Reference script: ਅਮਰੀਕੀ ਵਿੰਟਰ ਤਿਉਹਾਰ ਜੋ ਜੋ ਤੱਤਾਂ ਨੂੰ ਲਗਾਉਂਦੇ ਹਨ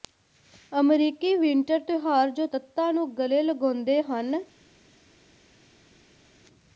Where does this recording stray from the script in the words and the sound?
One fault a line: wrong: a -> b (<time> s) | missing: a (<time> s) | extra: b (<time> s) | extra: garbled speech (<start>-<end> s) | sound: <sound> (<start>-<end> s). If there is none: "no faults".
missing: ਜੋ (2.5 s)
extra: ਗਲੇ (3.2 s)